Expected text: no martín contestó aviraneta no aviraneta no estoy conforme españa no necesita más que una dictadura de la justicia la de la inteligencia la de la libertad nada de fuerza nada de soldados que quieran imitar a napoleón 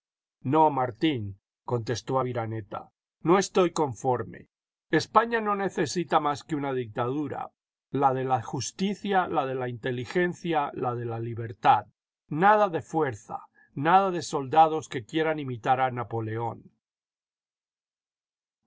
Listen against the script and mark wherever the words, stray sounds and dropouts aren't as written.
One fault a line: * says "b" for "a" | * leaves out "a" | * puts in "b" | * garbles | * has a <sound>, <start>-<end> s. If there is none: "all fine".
* leaves out "aviraneta no"
* puts in "la"